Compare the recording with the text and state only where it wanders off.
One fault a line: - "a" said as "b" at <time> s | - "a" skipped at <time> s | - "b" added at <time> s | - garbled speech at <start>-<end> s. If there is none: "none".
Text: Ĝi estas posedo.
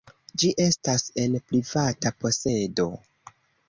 - "en privata" added at 1.3 s